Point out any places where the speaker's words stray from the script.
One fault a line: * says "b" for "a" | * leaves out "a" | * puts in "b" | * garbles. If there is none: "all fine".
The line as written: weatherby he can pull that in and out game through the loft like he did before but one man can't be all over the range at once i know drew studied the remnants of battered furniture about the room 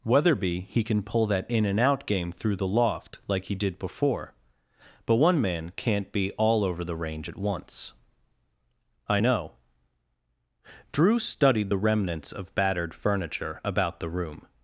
all fine